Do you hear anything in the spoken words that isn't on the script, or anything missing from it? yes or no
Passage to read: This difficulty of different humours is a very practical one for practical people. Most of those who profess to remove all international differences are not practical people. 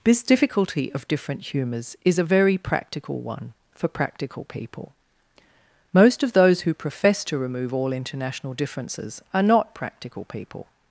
no